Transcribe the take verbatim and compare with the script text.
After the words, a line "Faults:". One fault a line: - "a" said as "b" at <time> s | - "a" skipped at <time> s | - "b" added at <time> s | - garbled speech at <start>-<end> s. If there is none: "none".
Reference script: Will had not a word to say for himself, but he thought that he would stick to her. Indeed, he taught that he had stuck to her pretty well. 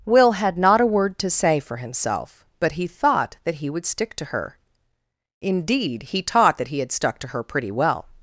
Will had not a word to say for himself, but he thought that he would stick to her. Indeed, he taught that he had stuck to her pretty well.
Faults:
none